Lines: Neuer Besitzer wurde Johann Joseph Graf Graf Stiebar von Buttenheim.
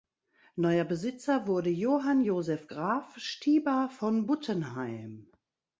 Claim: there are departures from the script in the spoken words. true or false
true